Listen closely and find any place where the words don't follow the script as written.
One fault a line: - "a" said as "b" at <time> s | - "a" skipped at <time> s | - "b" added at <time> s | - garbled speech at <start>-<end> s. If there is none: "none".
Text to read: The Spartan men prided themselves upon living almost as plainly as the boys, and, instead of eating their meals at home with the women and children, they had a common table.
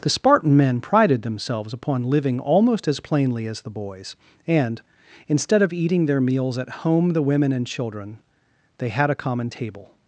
- "with" skipped at 7.1 s